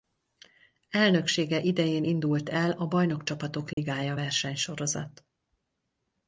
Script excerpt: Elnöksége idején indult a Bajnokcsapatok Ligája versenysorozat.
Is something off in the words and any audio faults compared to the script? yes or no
yes